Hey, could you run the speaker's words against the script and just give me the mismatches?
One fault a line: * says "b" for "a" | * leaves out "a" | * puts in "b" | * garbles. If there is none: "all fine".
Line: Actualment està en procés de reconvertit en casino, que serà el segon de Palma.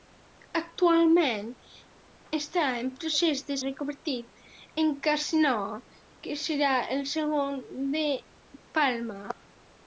all fine